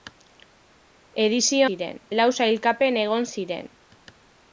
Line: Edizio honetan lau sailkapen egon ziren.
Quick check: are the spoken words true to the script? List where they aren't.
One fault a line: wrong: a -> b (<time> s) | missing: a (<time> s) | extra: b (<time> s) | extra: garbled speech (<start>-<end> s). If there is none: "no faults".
wrong: honetan -> ziren (1.7 s)